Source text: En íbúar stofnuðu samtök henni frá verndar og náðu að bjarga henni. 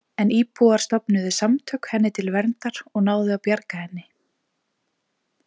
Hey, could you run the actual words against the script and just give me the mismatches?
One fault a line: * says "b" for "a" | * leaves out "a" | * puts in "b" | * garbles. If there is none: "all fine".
* says "til" for "frá"